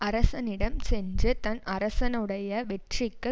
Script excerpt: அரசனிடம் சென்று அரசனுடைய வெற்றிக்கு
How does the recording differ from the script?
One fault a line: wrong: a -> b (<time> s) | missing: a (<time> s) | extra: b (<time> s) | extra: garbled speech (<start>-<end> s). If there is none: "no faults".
extra: தன் (1.4 s)